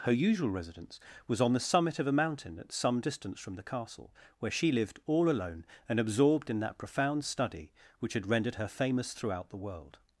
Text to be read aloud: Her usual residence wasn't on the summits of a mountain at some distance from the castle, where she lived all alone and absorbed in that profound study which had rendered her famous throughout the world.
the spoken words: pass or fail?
fail